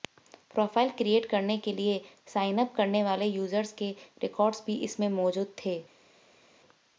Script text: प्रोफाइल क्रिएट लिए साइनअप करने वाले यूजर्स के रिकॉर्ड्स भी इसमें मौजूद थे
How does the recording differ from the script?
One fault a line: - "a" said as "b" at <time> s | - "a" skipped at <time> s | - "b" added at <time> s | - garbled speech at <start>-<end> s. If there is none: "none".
- "करने के" added at 1.2 s